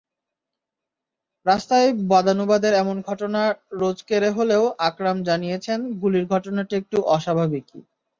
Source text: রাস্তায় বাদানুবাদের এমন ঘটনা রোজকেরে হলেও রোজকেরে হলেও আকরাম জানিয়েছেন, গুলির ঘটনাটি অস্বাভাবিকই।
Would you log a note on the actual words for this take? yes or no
yes